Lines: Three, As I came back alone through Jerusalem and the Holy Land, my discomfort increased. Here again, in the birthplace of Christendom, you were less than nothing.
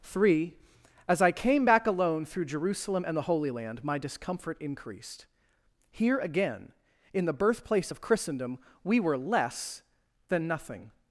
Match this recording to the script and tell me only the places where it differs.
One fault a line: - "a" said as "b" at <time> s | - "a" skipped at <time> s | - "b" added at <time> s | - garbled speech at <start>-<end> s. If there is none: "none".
- "you" said as "we" at 8.8 s